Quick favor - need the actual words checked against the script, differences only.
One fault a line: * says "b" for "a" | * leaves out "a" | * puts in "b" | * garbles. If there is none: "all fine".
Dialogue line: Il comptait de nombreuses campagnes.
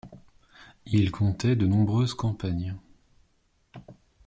all fine